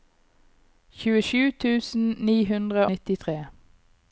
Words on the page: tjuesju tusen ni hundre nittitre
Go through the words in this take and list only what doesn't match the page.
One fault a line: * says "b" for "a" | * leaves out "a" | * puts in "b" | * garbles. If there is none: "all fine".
all fine